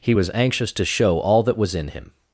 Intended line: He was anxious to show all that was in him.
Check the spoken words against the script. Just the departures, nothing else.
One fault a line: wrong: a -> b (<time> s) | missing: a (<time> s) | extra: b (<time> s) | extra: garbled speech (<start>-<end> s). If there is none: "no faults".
no faults